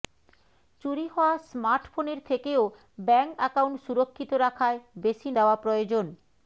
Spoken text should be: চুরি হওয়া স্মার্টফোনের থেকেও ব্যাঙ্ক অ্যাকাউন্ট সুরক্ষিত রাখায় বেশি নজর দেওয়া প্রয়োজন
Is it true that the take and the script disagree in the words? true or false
true